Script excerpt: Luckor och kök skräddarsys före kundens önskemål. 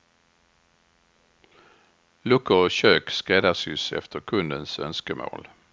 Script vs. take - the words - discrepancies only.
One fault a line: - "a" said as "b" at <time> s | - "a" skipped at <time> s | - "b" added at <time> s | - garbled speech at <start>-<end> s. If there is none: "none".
- "före" said as "efter" at 3.9 s